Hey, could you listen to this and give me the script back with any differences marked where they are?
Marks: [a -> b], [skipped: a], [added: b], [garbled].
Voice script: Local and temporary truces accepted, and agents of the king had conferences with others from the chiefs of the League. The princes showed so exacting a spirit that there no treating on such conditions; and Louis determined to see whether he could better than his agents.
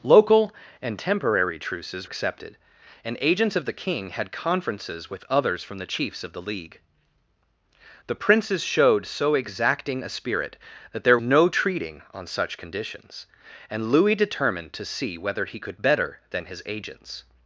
Local and temporary truces accepted, and agents of the king had conferences with others from the chiefs of the League. The princes showed so exacting a spirit that there no treating on such conditions; and Louis determined to see whether he could better than his agents.